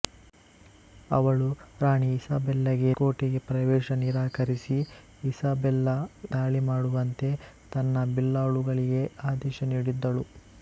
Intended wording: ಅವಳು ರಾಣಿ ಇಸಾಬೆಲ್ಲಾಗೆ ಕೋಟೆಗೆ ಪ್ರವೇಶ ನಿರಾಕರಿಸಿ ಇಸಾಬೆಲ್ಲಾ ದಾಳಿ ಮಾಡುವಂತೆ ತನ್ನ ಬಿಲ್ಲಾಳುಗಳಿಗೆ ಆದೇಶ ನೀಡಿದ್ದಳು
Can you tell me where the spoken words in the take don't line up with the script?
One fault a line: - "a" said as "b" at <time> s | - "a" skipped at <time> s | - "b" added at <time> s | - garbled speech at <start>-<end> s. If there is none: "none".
none